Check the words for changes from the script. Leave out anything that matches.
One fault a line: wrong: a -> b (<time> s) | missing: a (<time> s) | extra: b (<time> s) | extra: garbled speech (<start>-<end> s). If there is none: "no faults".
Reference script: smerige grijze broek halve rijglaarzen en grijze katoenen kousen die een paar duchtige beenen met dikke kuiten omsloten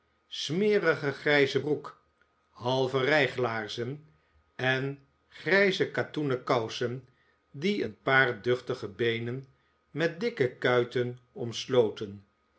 no faults